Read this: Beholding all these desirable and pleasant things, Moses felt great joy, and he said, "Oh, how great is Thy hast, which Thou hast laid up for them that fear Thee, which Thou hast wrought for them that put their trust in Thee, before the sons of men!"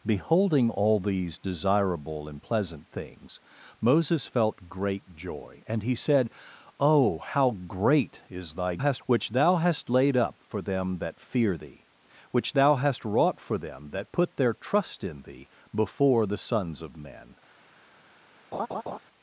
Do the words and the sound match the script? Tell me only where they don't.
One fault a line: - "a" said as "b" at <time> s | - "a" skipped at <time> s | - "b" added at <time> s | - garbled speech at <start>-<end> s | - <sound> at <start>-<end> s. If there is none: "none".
- laugh at 18.5-19.0 s